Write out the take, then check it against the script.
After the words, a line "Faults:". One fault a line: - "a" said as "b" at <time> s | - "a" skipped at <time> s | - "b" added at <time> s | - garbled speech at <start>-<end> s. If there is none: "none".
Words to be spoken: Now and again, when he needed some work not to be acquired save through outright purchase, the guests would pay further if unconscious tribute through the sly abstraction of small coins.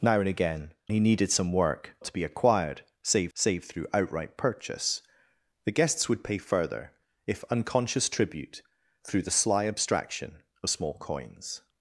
Now and again, he needed some work to be acquired save save through outright purchase, the guests would pay further if unconscious tribute through the sly abstraction of small coins.
Faults:
- "when" skipped at 0.7 s
- "not" skipped at 1.9 s
- "save" added at 3.3 s